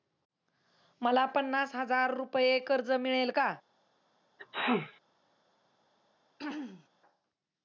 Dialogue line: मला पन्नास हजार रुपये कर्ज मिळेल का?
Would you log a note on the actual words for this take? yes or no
no